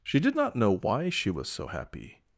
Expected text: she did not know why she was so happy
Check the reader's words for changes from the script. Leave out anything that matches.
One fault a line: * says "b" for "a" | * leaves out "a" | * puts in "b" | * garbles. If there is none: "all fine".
all fine